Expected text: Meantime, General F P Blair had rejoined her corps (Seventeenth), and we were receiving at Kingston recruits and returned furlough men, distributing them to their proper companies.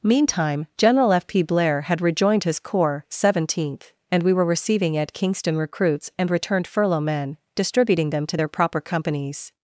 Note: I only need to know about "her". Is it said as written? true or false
false